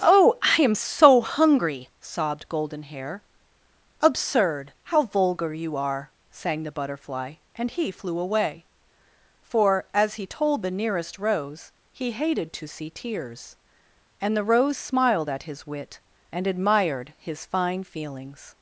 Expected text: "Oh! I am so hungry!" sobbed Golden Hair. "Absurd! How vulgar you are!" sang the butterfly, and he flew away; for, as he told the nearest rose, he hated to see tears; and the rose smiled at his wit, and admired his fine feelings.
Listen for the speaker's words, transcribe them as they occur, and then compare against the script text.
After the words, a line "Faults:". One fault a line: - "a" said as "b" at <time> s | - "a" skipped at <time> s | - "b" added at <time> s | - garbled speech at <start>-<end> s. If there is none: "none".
"Oh! I am so hungry!" sobbed Golden Hair. "Absurd! How vulgar you are!" sang the butterfly, and he flew away; for, as he told the nearest rose, he hated to see tears; and the rose smiled at his wit, and admired his fine feelings.
Faults:
none